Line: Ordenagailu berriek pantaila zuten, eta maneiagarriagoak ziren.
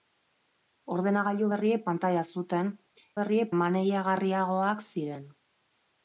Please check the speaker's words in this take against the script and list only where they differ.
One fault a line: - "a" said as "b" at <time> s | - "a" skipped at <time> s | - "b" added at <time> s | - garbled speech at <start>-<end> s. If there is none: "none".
- "eta" said as "berriek" at 3.2 s